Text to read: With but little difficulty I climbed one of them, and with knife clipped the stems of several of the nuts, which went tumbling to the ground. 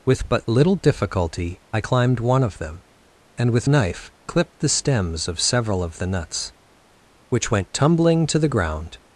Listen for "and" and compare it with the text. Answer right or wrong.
right